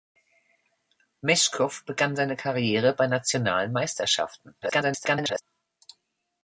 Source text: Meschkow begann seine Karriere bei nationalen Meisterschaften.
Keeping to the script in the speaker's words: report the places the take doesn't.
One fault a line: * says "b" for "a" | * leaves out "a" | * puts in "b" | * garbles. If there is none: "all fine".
* garbles